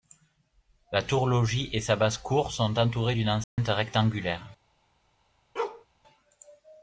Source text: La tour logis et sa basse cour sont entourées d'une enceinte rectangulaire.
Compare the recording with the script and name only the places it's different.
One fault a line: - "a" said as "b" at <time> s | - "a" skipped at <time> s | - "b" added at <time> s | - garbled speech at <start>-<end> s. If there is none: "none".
none